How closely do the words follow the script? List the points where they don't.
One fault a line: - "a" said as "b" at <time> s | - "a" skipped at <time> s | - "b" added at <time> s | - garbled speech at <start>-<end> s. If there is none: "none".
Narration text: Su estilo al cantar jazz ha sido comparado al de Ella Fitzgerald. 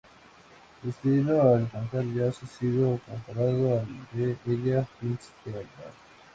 none